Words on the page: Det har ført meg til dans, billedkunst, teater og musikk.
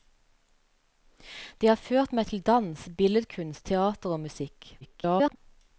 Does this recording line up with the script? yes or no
no